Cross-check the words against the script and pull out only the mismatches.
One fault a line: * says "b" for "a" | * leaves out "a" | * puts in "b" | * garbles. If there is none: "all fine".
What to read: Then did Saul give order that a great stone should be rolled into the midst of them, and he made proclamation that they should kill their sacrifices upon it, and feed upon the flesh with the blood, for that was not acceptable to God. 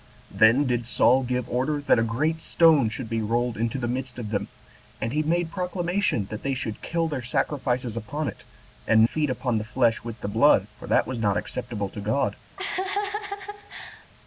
all fine